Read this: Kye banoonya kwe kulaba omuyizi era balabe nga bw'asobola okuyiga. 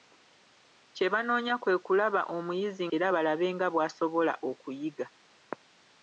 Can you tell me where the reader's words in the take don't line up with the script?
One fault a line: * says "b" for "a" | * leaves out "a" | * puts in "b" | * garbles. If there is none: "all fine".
all fine